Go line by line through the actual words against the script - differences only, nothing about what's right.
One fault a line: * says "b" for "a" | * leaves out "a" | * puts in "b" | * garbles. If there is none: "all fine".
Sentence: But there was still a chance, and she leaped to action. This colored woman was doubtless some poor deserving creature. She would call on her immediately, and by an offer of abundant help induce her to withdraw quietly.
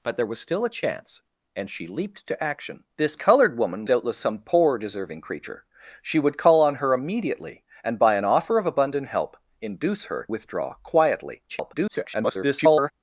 * leaves out "was"
* leaves out "to"
* garbles